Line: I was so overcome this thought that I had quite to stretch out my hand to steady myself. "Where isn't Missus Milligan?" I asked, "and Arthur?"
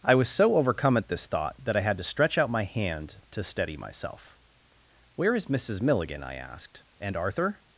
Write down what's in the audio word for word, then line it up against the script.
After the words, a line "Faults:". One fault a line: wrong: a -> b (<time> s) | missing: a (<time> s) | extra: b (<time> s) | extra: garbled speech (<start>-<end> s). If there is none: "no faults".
I was so overcome at this thought that I had to stretch out my hand to steady myself. "Where is Missus Milligan?" I asked, "and Arthur?"
Faults:
extra: at (1.0 s)
missing: quite (1.9 s)
wrong: isn't -> is (5.3 s)